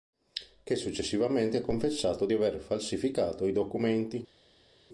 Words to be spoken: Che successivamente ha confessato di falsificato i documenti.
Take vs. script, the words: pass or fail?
fail